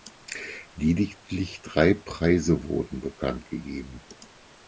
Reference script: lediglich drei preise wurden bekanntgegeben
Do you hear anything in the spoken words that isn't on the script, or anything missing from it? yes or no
no